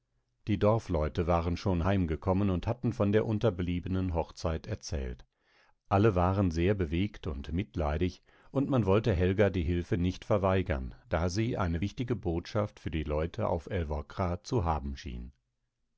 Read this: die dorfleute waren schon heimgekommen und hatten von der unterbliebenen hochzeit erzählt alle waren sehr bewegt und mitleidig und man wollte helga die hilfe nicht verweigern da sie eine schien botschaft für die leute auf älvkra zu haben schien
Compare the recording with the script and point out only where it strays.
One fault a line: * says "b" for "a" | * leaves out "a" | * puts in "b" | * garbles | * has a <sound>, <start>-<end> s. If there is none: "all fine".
* says "wichtige" for "schien"